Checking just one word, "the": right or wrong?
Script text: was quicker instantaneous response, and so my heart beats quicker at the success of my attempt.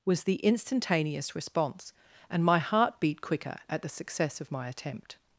right